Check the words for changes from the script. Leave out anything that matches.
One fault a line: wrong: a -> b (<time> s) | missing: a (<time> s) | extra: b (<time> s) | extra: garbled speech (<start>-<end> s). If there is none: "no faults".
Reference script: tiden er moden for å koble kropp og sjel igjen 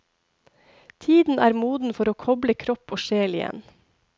no faults